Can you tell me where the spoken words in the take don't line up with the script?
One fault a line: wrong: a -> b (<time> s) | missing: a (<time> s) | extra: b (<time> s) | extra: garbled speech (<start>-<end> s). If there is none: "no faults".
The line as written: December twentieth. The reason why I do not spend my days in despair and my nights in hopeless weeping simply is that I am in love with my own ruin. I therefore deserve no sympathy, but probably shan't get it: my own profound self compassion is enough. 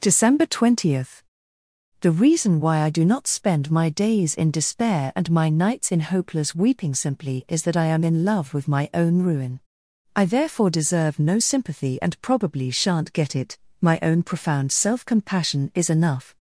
wrong: but -> and (12.0 s)